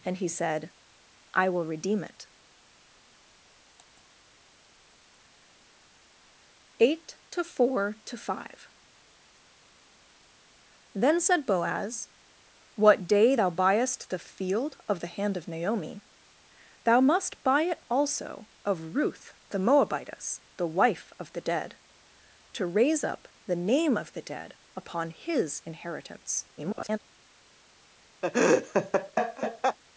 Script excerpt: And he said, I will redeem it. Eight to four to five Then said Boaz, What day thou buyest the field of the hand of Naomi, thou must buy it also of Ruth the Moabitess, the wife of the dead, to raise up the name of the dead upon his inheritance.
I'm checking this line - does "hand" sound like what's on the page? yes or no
yes